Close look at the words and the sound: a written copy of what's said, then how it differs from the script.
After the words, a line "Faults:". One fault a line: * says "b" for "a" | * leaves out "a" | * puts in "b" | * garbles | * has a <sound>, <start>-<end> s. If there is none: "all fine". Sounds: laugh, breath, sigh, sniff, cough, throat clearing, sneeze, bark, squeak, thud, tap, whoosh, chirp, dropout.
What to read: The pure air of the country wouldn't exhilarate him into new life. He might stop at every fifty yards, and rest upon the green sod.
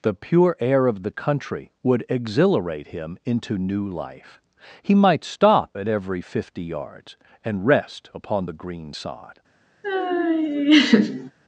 The pure air of the country would exhilarate him into new life. He might stop at every fifty yards, and rest upon the green sod.
Faults:
* says "would" for "wouldn't"
* has a laugh, 9.8-11.3 s